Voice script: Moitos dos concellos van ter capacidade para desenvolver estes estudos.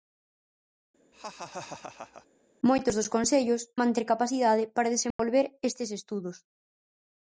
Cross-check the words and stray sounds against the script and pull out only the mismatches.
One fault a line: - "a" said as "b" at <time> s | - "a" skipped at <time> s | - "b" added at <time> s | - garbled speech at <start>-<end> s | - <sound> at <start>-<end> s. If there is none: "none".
- laugh at 1.1-2.3 s
- dropout at 5.1-5.2 s